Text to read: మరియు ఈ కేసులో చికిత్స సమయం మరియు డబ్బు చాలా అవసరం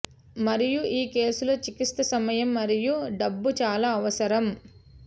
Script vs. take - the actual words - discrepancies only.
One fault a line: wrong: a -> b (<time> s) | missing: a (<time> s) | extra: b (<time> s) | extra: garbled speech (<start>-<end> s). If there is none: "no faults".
no faults